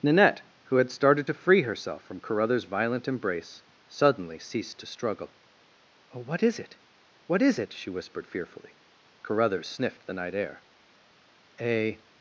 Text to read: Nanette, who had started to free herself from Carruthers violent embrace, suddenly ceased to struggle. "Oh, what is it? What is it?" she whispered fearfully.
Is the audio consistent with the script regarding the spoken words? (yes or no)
no